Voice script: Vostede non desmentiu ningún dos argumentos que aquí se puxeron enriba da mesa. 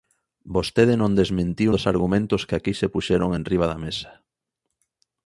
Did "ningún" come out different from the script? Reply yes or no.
yes